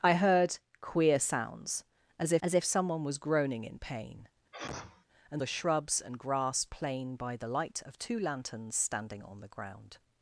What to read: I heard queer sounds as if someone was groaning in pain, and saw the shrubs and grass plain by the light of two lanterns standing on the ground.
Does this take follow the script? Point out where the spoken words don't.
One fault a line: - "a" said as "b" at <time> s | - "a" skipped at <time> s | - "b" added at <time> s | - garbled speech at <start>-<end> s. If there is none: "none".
- "as if" added at 2.4 s
- "saw" skipped at 5.4 s